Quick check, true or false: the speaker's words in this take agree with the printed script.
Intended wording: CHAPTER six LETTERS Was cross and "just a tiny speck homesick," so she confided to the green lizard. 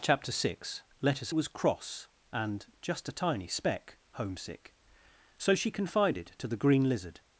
true